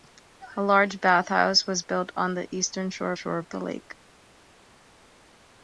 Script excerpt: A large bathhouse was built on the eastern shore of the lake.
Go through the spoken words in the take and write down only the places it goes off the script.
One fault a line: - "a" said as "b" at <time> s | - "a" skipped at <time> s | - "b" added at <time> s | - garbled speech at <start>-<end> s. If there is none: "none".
- "shore" added at 3.1 s